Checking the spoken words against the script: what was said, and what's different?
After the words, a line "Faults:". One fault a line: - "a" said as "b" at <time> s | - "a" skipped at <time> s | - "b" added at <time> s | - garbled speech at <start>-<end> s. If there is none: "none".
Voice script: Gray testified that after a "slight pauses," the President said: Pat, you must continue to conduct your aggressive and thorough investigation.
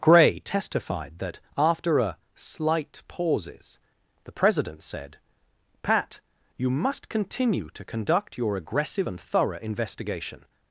Gray testified that after a "slight pauses," the President said: Pat, you must continue to conduct your aggressive and thorough investigation.
Faults:
none